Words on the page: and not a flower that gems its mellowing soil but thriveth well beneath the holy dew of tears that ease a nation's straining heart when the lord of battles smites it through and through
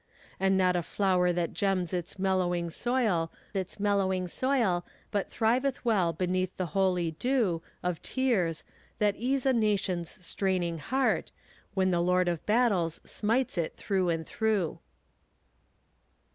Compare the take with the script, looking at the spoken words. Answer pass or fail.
fail